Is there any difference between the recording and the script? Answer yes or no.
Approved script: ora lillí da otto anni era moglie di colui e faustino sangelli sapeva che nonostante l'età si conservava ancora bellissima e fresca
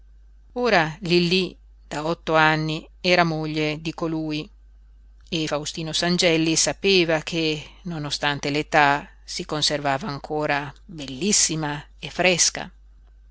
no